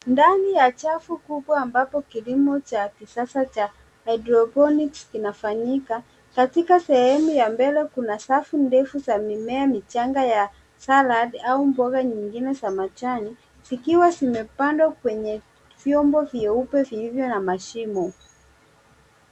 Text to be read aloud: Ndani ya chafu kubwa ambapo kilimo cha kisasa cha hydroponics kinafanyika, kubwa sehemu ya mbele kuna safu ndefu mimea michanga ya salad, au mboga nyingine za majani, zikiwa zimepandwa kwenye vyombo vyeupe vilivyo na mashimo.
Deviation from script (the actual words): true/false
true